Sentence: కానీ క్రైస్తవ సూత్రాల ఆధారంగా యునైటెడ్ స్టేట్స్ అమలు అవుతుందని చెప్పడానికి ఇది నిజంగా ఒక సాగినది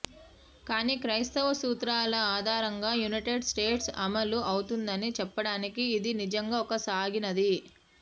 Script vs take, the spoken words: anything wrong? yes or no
no